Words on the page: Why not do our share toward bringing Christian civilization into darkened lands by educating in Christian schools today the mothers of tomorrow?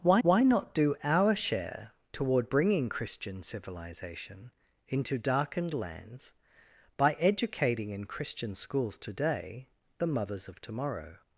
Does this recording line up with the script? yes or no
no